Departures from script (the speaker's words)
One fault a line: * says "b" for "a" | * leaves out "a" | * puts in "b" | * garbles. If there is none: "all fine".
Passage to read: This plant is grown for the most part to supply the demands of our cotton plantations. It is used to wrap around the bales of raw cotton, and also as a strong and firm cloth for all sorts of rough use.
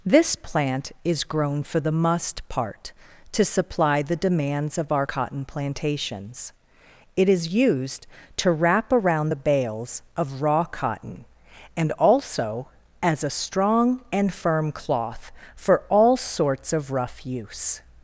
* says "must" for "most"